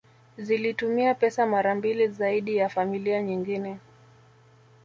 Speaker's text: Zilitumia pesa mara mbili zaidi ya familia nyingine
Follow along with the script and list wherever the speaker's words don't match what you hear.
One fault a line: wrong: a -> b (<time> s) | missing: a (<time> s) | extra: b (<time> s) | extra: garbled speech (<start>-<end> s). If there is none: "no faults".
no faults